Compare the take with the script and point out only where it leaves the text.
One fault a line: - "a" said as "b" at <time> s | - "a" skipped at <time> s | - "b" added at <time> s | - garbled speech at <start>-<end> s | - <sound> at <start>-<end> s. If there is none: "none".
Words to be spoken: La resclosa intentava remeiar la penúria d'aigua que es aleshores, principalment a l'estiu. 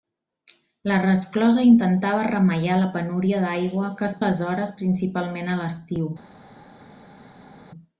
none